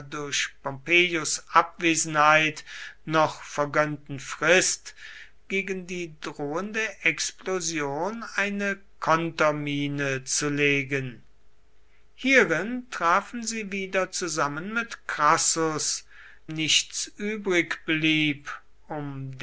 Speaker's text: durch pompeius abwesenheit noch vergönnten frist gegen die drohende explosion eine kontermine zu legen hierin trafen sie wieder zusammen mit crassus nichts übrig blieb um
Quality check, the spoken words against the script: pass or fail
pass